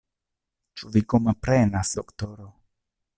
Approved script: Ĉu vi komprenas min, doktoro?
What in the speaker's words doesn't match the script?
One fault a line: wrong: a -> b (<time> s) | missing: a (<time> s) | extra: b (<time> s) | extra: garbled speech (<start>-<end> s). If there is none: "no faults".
missing: min (1.9 s)